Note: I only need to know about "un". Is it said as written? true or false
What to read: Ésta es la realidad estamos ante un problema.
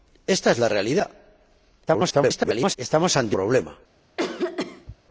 false